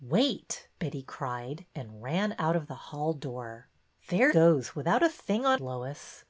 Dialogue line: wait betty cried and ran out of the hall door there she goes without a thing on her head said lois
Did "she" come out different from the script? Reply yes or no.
yes